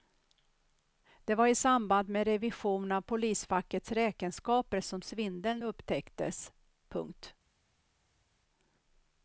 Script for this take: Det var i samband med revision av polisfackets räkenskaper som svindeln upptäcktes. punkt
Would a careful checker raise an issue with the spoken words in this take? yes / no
no